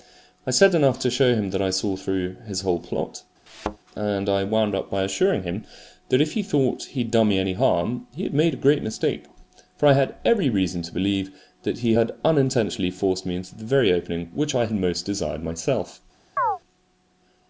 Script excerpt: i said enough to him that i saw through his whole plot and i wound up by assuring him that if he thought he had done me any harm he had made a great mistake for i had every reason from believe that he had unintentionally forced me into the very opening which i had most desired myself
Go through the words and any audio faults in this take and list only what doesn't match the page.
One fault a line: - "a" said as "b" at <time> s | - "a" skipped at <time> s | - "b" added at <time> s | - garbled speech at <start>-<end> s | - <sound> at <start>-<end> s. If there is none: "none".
- "show" added at 1.1 s
- thud at 3.5-3.8 s
- "from" said as "to" at 10.8 s
- chirp at 16.4-16.6 s